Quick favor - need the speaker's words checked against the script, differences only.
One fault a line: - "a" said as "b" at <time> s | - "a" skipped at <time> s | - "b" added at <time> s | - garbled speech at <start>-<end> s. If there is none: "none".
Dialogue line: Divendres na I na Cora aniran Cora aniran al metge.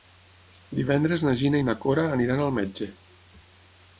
- "Gina" added at 1.4 s
- "Cora aniran" skipped at 2.4 s